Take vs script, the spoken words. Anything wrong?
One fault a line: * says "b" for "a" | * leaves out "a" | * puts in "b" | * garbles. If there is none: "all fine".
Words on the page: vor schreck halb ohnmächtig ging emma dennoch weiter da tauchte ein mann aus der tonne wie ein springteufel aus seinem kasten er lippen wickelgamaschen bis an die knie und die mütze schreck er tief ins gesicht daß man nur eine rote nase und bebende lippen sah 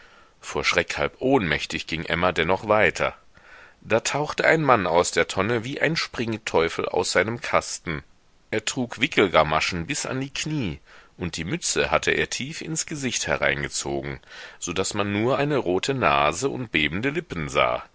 * says "trug" for "lippen"
* says "hatte" for "schreck"
* puts in "hereingezogen so"